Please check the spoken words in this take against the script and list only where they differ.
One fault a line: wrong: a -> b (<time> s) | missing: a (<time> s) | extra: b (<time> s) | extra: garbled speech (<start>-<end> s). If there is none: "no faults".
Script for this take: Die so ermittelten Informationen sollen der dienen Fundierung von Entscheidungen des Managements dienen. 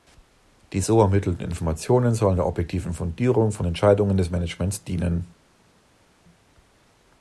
wrong: dienen -> objektiven (2.4 s)